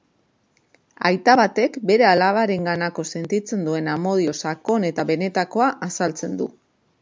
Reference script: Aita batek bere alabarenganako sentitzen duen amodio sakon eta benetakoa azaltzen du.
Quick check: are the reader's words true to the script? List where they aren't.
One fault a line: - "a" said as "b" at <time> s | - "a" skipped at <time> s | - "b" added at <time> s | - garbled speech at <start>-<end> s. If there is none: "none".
none